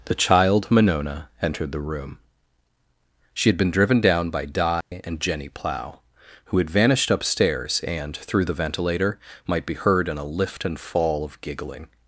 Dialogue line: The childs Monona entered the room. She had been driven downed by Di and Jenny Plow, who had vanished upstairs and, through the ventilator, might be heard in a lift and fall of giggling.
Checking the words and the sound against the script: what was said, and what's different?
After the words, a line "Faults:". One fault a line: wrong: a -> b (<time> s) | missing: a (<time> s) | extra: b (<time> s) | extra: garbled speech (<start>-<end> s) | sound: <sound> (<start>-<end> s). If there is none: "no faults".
The child Monona entered the room. She had been driven down by Di and Jenny Plow, who had vanished upstairs and, through the ventilator, might be heard in a lift and fall of giggling.
Faults:
wrong: childs -> child (0.1 s)
wrong: downed -> down (4.0 s)
sound: dropout (4.8-4.9 s)